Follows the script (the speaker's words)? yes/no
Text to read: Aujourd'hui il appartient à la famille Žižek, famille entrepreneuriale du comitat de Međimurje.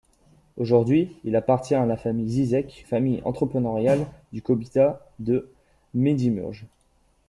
yes